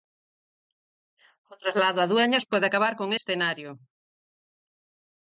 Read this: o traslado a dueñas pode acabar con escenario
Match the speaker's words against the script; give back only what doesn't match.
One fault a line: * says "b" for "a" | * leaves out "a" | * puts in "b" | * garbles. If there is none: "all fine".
all fine